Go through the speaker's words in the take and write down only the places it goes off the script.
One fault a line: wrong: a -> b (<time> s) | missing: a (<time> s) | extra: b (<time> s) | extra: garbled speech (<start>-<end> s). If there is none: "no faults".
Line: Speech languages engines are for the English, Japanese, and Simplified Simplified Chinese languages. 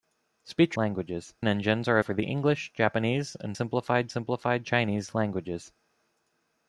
no faults